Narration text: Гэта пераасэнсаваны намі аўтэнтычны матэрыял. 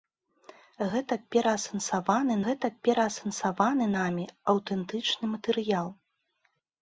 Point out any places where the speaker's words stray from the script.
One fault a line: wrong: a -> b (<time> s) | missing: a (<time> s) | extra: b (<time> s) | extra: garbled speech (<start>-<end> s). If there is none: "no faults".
extra: гэта пераасэнсаваны (2.5 s)